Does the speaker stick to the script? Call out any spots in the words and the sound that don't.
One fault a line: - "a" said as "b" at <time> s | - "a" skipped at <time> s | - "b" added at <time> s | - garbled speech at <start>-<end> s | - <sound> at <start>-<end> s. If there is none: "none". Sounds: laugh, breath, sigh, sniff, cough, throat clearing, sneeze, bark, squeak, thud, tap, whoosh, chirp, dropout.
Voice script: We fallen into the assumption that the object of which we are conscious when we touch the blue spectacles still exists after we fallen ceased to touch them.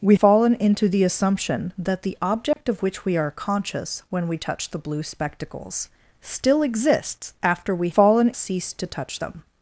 - dropout at 2.5-2.6 s